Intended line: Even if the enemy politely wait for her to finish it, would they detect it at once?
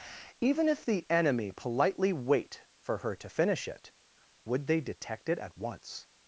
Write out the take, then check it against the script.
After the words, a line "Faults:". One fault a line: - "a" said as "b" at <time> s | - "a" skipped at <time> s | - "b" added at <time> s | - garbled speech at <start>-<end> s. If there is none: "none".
Even if the enemy politely wait for her to finish it, would they detect it at once?
Faults:
none